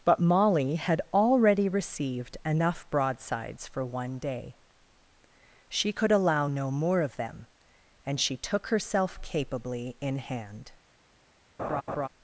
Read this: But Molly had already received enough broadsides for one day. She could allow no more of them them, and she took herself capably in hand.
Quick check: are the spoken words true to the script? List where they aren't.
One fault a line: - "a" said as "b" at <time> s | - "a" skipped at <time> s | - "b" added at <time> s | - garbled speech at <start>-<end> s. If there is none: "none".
- "them" skipped at 7.5 s